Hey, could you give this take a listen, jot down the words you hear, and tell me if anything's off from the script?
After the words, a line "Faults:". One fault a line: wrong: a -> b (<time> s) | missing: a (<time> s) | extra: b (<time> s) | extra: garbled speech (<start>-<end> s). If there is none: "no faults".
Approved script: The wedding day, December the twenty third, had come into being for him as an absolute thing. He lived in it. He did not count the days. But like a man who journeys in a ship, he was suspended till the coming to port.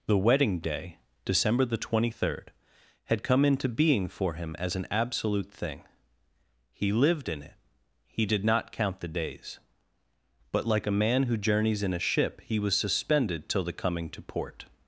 The wedding day, December the twenty third, had come into being for him as an absolute thing. He lived in it. He did not count the days. But like a man who journeys in a ship, he was suspended till the coming to port.
Faults:
no faults